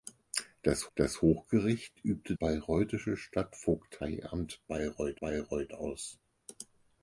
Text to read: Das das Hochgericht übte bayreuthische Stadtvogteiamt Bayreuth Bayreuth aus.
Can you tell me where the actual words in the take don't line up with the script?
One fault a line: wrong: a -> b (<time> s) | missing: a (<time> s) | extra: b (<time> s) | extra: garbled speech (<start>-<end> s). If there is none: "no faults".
no faults